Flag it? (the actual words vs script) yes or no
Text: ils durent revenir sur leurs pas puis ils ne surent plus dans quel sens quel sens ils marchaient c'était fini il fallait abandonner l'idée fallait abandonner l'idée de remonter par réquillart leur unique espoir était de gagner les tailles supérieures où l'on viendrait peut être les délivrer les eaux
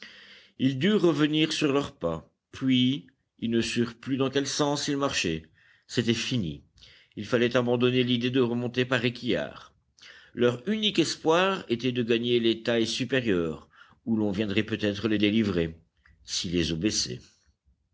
yes